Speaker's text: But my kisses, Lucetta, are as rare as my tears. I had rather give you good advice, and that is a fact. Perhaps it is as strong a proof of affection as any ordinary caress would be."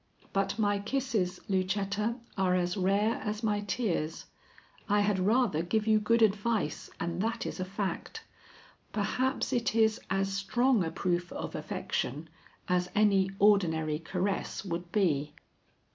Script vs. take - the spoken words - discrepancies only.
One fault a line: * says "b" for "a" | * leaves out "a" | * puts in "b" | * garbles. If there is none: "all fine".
all fine